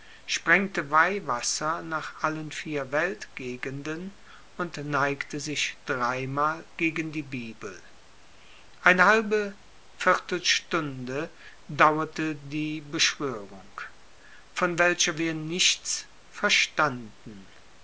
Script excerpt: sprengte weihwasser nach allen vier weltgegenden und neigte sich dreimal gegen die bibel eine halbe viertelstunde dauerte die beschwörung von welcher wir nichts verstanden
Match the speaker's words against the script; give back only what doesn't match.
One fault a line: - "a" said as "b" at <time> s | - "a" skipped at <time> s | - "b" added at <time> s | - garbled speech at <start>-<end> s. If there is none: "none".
none